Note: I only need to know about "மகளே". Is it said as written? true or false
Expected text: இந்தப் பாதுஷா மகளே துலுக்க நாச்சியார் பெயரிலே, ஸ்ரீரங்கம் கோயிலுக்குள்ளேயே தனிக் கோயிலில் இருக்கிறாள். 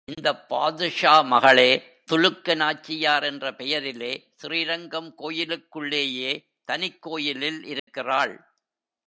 true